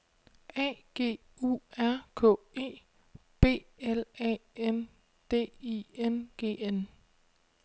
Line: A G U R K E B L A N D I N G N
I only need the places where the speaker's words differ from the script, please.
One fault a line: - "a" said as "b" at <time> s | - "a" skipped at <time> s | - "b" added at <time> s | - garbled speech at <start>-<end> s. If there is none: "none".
none